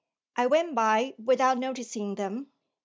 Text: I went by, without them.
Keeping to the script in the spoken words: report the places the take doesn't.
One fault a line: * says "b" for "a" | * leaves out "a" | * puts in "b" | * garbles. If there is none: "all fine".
* puts in "noticing"